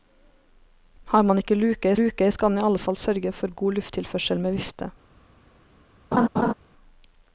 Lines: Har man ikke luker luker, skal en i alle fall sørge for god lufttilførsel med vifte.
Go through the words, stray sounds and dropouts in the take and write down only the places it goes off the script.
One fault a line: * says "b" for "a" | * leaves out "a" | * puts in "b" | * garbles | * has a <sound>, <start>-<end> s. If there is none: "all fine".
* has a laugh, 6.1-6.5 s